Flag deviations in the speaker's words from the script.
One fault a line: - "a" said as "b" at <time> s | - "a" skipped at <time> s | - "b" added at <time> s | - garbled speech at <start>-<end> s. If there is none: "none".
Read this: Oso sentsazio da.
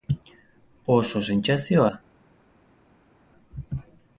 none